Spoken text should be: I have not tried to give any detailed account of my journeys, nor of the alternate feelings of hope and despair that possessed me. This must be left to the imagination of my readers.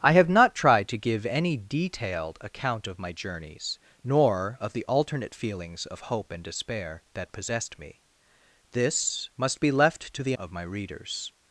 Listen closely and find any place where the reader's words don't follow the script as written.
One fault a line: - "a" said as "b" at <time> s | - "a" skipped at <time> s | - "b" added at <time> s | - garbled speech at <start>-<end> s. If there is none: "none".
- "imagination" skipped at 10.3 s